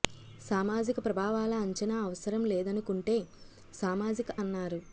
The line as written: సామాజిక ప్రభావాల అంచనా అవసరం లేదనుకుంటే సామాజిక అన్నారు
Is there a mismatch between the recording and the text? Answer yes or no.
no